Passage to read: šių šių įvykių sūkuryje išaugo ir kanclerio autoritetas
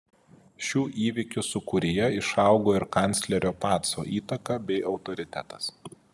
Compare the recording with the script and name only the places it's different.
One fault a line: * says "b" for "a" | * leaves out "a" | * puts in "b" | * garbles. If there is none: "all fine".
* leaves out "šių"
* puts in "paco įtaka bei"